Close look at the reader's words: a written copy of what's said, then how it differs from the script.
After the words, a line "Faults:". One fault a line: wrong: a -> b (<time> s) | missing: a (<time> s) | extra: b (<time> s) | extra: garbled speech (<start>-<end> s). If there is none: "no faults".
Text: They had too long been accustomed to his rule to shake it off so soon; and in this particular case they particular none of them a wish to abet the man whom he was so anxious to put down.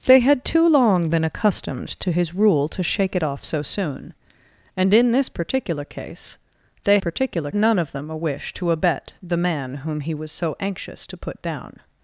They had too long been accustomed to his rule to shake it off so soon; and in this particular case they particular none of them a wish to abet the man whom he was so anxious to put down.
Faults:
no faults